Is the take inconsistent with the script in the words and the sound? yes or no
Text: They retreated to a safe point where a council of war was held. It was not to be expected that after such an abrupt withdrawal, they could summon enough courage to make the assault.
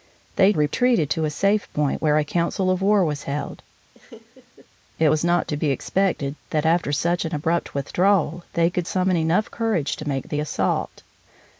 yes